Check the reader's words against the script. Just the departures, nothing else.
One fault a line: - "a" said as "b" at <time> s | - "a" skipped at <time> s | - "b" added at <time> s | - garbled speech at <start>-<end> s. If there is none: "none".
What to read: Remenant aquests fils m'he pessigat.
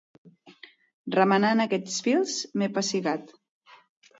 none